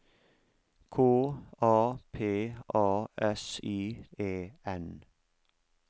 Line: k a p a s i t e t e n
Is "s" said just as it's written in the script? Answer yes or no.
yes